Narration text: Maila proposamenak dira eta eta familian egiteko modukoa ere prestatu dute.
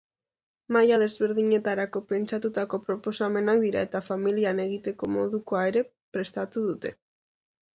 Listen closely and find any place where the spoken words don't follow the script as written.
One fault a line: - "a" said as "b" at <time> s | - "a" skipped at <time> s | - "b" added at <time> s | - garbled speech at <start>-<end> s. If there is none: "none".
- "desberdinetarako pentsatutako" added at 1.0 s
- "eta" skipped at 4.0 s